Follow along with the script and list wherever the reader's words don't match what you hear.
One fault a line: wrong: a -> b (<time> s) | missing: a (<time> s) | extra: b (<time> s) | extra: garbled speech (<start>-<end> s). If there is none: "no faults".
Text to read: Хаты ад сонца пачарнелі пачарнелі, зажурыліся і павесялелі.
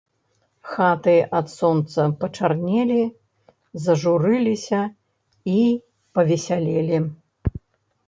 missing: пачарнелі (3.0 s)